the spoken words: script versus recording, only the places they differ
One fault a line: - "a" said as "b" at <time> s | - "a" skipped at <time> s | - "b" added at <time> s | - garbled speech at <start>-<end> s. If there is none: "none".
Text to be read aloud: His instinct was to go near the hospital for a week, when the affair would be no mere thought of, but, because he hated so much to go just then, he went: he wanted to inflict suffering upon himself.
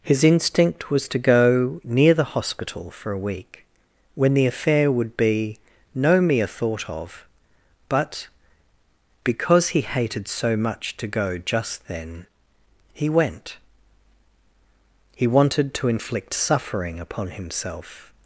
none